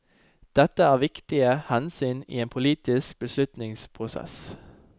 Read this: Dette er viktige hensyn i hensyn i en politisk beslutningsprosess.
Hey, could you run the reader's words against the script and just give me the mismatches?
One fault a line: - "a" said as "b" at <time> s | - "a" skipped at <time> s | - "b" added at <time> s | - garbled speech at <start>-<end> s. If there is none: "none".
- "hensyn i" skipped at 2.4 s